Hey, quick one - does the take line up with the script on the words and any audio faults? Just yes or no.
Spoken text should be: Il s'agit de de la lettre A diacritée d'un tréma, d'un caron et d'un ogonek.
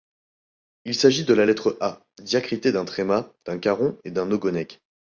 no